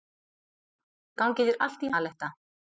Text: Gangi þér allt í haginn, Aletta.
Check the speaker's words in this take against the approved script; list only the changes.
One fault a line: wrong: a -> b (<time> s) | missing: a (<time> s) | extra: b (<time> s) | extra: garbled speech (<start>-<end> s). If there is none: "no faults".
missing: haginn (1.9 s)